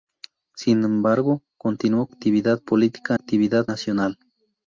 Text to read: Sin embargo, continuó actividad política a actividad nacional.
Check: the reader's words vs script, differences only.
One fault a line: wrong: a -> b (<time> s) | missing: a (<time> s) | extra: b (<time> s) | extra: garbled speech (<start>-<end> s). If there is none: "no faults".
no faults